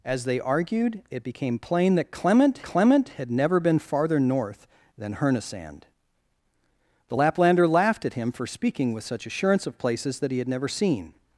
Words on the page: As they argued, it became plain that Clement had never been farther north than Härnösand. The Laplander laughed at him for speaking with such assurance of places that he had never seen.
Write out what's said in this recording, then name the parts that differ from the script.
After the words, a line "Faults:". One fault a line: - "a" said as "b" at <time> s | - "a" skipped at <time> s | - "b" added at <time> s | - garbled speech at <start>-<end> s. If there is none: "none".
As they argued, it became plain that Clement Clement had never been farther north than Härnösand. The Laplander laughed at him for speaking with such assurance of places that he had never seen.
Faults:
- "Clement" added at 2.6 s